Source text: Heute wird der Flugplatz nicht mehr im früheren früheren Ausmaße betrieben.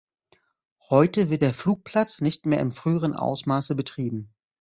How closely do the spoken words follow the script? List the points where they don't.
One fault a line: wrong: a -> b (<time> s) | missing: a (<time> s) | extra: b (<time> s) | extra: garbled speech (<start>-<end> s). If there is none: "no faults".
missing: früheren (3.1 s)